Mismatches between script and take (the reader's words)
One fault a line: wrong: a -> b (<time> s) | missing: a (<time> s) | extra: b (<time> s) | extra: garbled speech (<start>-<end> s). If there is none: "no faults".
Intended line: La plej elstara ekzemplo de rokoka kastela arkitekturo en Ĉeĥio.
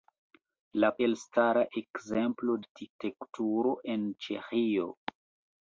missing: plej (0.9 s)
missing: de rokoka kastela (2.6 s)